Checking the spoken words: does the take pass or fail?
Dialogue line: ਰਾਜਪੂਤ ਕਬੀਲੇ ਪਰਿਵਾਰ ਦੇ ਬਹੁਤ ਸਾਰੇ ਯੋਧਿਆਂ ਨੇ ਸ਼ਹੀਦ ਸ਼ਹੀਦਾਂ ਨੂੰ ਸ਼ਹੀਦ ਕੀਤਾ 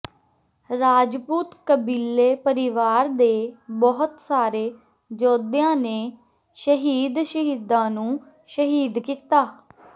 pass